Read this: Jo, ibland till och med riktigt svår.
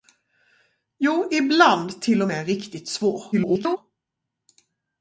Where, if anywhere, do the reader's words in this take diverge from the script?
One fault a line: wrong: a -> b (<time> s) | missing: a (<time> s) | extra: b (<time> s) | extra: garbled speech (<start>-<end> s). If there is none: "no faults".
extra: garbled speech (3.3-3.8 s)